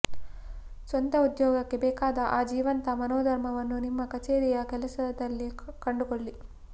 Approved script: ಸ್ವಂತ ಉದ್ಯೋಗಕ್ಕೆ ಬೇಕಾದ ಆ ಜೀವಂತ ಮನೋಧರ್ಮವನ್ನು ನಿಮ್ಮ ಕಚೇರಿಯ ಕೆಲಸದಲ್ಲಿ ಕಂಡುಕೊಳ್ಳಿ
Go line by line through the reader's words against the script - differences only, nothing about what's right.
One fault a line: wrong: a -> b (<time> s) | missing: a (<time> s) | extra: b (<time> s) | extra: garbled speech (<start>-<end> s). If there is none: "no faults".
no faults